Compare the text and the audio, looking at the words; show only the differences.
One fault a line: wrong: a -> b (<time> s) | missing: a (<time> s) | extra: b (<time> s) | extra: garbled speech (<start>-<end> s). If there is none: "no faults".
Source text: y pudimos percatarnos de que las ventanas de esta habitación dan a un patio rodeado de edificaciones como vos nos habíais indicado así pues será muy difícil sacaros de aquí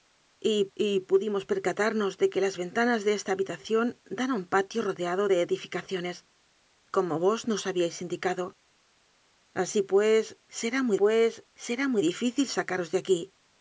extra: y (0.7 s)
extra: pues será muy (11.0 s)